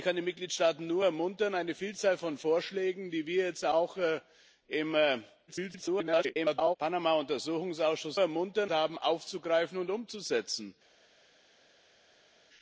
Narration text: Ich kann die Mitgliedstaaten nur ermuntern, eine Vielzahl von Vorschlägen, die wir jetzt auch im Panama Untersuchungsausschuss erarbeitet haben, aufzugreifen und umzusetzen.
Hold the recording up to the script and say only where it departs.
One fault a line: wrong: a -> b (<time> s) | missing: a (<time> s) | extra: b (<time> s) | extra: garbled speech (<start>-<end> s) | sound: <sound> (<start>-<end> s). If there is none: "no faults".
extra: garbled speech (5.5-6.8 s)
wrong: erarbeitet -> ermuntern (8.2 s)